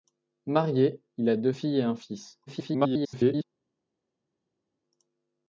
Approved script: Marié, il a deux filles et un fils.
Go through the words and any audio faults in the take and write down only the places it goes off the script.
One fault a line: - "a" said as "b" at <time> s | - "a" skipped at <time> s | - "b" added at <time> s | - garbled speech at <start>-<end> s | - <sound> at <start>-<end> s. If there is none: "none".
- garbled speech at 2.5-3.4 s